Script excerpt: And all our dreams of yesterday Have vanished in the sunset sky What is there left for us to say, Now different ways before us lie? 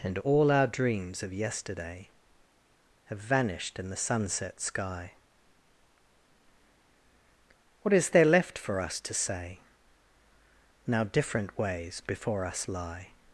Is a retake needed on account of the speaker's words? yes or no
no